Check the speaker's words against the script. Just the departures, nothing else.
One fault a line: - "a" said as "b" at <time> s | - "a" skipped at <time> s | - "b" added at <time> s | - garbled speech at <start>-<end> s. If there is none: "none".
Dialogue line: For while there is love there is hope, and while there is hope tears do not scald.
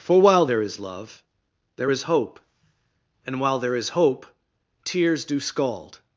- "not" skipped at 5.4 s